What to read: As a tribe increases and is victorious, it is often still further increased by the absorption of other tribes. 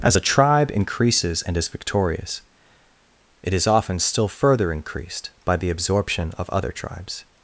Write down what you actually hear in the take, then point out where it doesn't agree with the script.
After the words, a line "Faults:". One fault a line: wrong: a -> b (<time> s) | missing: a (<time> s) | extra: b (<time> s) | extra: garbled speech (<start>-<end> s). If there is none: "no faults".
As a tribe increases and is victorious, it is often still further increased by the absorption of other tribes.
Faults:
no faults